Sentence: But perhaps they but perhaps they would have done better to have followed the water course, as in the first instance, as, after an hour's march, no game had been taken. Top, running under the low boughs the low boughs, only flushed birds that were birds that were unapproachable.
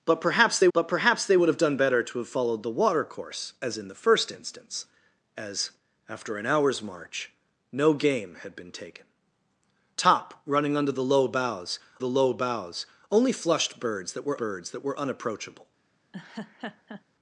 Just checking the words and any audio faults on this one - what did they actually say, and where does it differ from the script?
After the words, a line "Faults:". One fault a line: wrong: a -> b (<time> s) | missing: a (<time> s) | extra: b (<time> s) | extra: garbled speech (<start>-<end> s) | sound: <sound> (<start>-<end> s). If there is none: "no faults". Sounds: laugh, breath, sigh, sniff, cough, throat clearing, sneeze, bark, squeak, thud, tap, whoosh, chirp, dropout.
But perhaps they but perhaps they would have done better to have followed the water course, as in the first instance, as, after an hour's march, no game had been taken. Top, running under the low boughs the low boughs, only flushed birds that were birds that were unapproachable.
Faults:
sound: laugh (16.1-17.0 s)